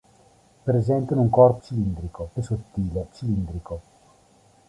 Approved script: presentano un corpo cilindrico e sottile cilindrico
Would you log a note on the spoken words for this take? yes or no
no